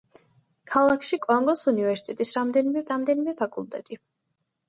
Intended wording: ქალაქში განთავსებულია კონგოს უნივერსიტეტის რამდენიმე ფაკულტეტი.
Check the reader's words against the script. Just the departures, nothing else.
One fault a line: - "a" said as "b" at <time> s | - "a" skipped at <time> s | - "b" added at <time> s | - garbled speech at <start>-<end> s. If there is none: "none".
- "განთავსებულია" skipped at 1.2 s
- "რამდენიმე" added at 2.9 s